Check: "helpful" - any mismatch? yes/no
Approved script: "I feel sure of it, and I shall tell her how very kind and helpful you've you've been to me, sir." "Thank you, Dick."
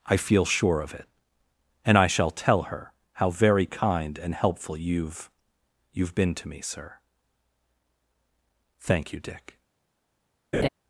no